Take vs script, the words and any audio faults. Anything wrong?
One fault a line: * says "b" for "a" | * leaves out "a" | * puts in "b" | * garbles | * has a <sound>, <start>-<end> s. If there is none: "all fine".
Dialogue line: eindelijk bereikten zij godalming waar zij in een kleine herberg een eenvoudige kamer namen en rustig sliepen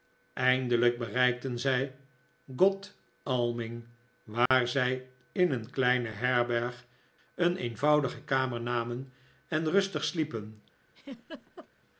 * has a dropout, 4.5-4.5 s
* has a laugh, 10.9-11.7 s